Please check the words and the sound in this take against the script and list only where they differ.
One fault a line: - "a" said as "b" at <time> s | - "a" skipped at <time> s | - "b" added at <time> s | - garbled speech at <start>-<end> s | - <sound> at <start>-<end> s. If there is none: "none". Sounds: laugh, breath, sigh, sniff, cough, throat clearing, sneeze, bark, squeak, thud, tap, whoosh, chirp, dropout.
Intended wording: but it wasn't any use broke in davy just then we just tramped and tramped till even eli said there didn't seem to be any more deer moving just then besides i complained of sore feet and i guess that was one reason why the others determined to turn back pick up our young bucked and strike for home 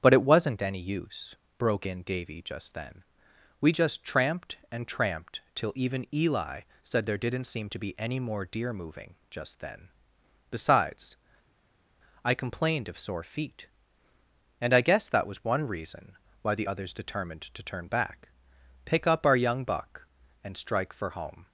- "bucked" said as "buck" at 19.6 s